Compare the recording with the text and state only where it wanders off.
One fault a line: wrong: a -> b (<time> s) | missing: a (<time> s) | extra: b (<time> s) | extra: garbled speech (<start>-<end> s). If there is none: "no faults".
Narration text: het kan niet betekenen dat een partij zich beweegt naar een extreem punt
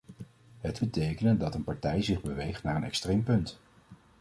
missing: kan niet (0.8 s)